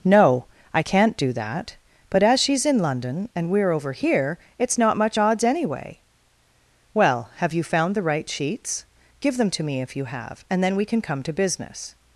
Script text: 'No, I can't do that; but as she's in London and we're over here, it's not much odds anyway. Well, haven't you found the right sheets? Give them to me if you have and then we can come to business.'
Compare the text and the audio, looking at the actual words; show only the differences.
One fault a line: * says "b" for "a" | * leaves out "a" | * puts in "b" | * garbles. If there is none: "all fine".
* says "have" for "haven't"